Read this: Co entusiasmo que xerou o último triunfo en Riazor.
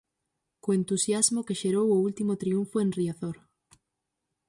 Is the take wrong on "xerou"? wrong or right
right